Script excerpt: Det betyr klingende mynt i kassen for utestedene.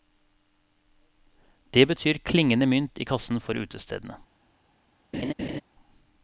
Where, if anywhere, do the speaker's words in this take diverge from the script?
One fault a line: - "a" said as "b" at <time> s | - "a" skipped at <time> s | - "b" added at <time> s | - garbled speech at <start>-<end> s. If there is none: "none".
none